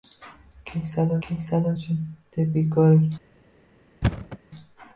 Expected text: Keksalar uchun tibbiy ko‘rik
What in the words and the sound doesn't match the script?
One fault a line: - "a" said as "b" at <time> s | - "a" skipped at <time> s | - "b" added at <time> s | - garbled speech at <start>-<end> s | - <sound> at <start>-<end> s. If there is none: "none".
- "keksalar" added at 1.2 s
- thud at 4.0-4.4 s